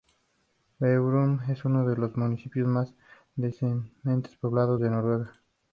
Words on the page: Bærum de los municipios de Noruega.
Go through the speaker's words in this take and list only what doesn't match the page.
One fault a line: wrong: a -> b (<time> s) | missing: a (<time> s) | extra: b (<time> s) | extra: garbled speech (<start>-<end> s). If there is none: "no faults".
extra: es uno (1.5 s)
extra: más densamente poblados (2.7 s)